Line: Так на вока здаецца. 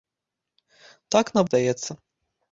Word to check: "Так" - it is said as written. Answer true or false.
true